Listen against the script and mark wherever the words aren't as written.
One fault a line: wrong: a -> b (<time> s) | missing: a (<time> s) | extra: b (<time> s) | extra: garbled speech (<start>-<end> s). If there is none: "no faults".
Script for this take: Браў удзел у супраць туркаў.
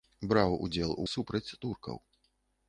no faults